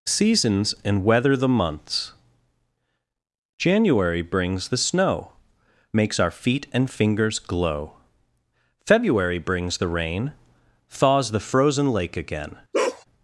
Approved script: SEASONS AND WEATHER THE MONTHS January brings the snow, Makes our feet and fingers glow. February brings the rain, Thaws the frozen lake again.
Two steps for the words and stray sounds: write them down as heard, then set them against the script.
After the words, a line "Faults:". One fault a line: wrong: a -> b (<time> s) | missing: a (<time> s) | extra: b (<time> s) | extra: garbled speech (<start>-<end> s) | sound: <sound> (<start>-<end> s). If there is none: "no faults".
SEASONS AND WEATHER THE MONTHS January brings the snow, Makes our feet and fingers glow. February brings the rain, Thaws the frozen lake again.
Faults:
sound: bark (12.7-13.0 s)